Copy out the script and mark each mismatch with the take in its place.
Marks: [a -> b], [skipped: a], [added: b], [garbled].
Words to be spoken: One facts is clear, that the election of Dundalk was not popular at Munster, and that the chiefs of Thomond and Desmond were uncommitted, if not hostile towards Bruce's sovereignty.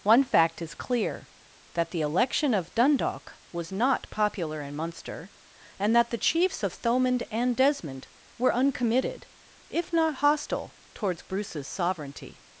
One [facts -> fact] is clear, that the election of Dundalk was not popular [at -> in] Munster, and that the chiefs of Thomond and Desmond were uncommitted, if not hostile towards Bruce's sovereignty.